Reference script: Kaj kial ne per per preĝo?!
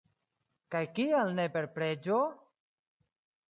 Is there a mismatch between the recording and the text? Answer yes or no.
yes